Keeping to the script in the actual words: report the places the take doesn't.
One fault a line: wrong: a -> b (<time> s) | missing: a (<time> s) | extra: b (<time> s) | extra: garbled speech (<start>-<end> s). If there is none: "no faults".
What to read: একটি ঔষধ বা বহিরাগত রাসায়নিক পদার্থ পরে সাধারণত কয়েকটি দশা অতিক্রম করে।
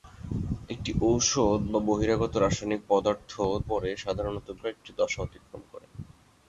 no faults